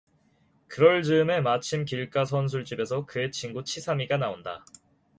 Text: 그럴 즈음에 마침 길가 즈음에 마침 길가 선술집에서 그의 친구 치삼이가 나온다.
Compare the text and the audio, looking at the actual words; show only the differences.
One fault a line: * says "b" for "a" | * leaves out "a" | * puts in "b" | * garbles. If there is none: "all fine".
* leaves out "즈음에 마침 길가"